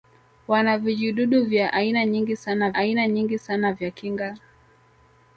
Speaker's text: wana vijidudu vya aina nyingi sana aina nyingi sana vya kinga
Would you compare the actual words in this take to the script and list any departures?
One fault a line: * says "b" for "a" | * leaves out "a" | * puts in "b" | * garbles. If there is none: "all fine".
all fine